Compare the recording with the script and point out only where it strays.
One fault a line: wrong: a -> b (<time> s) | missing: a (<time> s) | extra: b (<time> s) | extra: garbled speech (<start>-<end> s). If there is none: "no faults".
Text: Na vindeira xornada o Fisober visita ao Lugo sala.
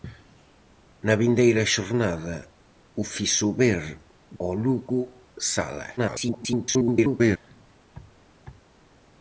missing: visita (3.8 s)
extra: garbled speech (6.0-7.4 s)